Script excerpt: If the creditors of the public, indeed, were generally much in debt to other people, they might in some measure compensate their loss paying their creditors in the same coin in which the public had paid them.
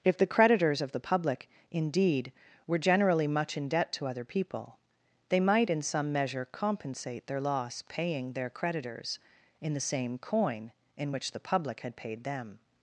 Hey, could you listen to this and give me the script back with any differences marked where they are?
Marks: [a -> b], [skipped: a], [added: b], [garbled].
If the creditors of the public, indeed, were generally much in debt to other people, they might in some measure compensate their loss paying their creditors in the same coin in which the public had paid them.